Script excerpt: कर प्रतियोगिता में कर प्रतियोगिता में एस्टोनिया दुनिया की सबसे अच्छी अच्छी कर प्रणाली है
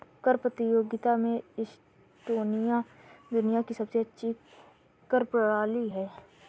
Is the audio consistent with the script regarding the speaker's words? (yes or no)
no